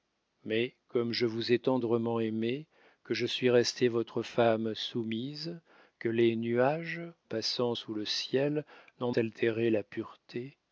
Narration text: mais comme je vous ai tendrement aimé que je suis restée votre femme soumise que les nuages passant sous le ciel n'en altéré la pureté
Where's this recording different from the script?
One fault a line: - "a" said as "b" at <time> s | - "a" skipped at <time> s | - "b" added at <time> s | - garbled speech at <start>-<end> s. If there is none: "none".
none